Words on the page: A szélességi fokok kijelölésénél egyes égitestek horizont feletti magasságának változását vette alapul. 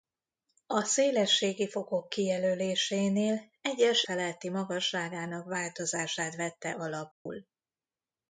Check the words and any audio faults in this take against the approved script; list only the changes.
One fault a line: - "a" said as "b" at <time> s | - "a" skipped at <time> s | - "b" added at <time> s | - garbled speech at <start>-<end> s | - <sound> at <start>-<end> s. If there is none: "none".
- "égitestek horizont" skipped at 4.0 s
- dropout at 7.1-7.3 s